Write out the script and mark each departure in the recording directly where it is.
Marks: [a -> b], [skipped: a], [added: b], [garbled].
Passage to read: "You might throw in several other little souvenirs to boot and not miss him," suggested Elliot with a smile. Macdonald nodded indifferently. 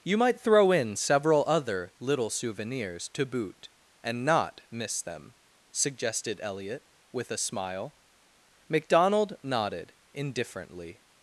"You might throw in several other little souvenirs to boot and not miss [him," -> them] suggested Elliot with a smile. Macdonald nodded indifferently.